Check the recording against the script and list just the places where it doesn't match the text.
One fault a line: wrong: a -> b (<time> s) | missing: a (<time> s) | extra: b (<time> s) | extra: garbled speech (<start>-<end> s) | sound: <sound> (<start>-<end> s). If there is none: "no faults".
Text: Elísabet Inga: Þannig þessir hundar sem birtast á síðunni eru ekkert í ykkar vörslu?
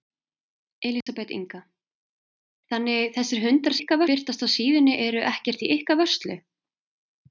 sound: dropout (1.0-1.1 s)
wrong: sem -> ykkar (3.8 s)